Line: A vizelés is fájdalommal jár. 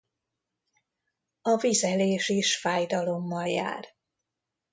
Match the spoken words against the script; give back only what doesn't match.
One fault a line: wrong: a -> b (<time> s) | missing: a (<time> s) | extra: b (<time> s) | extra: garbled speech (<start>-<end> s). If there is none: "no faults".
no faults